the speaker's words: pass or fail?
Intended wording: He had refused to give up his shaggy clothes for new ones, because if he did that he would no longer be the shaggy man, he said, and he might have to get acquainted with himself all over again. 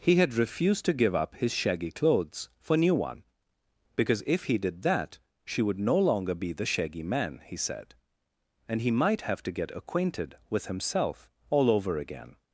fail